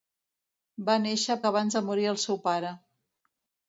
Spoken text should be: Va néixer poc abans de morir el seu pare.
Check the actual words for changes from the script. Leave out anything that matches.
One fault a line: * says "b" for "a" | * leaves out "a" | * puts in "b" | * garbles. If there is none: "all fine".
* leaves out "poc"